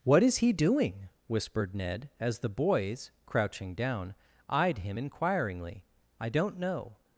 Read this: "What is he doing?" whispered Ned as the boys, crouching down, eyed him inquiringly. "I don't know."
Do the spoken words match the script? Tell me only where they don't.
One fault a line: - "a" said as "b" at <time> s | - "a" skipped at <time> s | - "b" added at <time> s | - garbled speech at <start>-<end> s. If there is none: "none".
none